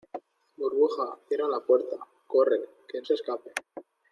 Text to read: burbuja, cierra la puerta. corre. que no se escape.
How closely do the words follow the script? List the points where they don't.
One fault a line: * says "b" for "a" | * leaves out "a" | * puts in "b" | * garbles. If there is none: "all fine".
* leaves out "no"